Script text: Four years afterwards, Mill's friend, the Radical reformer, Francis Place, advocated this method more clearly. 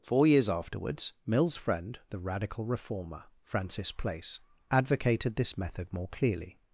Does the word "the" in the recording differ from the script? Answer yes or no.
no